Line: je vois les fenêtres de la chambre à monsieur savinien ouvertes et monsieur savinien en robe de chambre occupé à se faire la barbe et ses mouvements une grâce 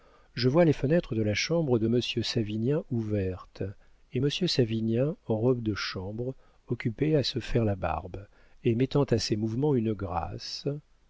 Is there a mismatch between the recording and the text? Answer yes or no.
yes